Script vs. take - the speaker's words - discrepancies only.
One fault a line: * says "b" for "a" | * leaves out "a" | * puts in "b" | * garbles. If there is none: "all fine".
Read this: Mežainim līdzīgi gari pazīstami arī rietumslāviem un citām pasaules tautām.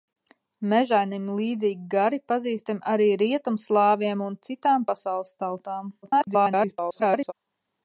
* garbles